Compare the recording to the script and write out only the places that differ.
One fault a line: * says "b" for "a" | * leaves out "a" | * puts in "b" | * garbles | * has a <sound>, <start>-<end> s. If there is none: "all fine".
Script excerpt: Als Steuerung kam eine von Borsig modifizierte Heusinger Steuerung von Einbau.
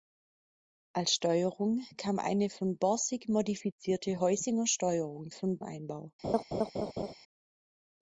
* has a laugh, 6.2-7.1 s